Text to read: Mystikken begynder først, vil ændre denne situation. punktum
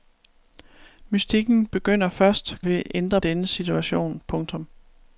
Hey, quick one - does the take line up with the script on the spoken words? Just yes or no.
yes